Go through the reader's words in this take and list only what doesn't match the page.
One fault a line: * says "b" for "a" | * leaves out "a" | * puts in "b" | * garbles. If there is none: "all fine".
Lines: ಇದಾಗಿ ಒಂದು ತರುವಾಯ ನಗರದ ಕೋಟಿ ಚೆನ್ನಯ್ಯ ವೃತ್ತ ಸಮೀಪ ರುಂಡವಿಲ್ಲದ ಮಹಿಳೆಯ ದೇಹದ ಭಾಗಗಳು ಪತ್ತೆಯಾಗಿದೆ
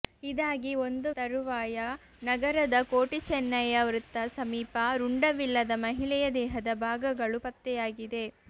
all fine